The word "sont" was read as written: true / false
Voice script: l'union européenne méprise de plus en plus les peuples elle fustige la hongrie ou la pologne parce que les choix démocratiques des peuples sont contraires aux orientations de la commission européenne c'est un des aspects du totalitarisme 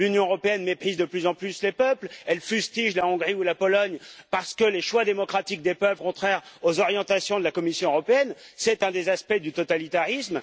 false